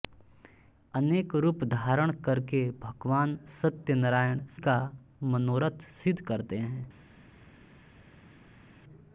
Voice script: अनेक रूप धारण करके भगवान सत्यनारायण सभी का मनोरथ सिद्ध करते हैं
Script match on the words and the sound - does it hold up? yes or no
no